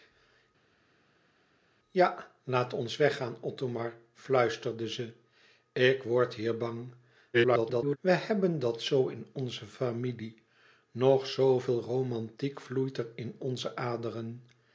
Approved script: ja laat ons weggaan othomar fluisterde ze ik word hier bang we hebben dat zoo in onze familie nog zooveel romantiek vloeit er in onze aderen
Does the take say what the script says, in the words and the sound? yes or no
no